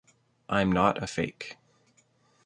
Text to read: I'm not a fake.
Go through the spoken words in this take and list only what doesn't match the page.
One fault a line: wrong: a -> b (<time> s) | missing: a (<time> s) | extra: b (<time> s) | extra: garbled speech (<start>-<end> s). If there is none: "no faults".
no faults